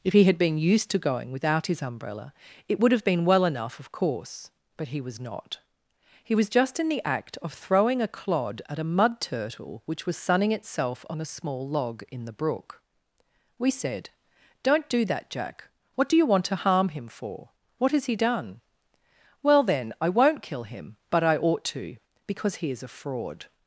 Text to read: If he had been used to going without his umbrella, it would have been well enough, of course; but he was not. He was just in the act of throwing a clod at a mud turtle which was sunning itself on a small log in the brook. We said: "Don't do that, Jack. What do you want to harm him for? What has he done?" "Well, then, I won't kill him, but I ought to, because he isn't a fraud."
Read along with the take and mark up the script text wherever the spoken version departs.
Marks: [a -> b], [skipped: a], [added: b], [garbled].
If he had been used to going without his umbrella, it would have been well enough, of course; but he was not. He was just in the act of throwing a clod at a mud turtle which was sunning itself on a small log in the brook. We said: "Don't do that, Jack. What do you want to harm him for? What has he done?" "Well, then, I won't kill him, but I ought to, because he [isn't -> is] a fraud."